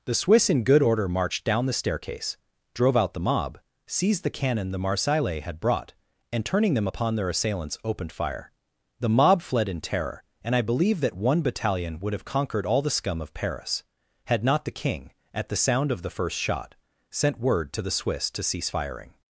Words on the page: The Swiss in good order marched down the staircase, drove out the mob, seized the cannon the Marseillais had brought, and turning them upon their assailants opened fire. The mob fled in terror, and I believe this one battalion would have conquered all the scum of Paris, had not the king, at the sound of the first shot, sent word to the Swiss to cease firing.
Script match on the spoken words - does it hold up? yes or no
no